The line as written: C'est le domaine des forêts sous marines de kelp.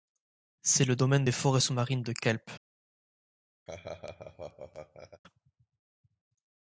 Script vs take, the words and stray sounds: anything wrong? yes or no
yes